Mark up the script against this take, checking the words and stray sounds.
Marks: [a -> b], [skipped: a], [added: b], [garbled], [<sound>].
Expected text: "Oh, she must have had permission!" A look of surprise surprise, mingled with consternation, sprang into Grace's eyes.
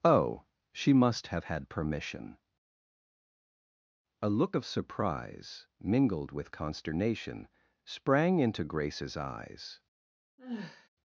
"Oh, she must have had permission!" A look of surprise [skipped: surprise,] mingled with consternation, sprang into Grace's eyes. [sigh]